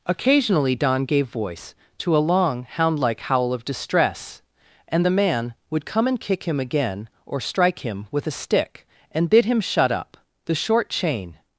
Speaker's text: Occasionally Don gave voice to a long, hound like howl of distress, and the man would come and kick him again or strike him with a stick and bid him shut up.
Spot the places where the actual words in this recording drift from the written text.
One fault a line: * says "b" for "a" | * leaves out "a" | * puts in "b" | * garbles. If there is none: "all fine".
* puts in "The short chain"